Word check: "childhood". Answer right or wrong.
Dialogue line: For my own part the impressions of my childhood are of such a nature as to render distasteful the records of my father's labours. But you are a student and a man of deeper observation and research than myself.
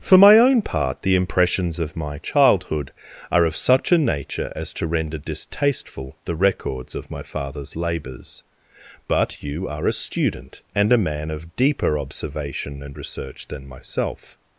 right